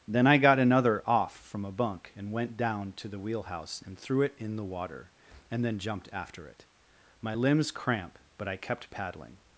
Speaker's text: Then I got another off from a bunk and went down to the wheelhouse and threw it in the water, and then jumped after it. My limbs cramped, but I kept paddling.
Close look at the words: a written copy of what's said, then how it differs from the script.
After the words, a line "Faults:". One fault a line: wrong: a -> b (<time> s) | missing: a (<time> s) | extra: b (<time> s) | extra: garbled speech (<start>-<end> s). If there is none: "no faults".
Then I got another off from a bunk and went down to the wheelhouse and threw it in the water, and then jumped after it. My limbs cramp, but I kept paddling.
Faults:
wrong: cramped -> cramp (7.7 s)